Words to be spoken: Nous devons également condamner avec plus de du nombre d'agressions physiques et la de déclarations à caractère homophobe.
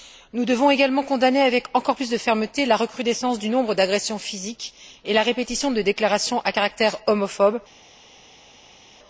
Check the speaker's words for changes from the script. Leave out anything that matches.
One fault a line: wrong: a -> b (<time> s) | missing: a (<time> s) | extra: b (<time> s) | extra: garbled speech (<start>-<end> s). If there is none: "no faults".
extra: encore (1.7 s)
extra: fermeté la recrudescence (2.2 s)
extra: répétition (5.2 s)